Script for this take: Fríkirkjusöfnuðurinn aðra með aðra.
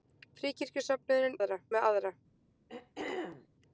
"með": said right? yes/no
yes